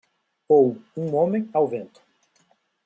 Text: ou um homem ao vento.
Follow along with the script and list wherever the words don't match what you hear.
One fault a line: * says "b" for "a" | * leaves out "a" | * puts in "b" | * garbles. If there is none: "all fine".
all fine